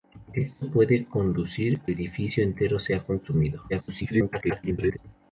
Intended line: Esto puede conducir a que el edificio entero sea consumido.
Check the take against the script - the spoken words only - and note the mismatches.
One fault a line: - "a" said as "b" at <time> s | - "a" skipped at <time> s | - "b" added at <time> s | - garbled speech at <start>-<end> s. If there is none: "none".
- "a que el" skipped at 1.8 s
- garbled speech at 3.7-5.0 s